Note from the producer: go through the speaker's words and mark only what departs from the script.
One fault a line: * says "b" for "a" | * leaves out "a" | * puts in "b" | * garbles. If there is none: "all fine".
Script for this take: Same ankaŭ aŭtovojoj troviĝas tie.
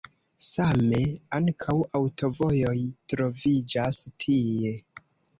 all fine